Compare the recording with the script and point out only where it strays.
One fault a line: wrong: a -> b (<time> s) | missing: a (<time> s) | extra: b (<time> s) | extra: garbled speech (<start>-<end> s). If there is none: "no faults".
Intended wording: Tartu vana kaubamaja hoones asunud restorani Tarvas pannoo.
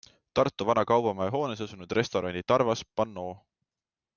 no faults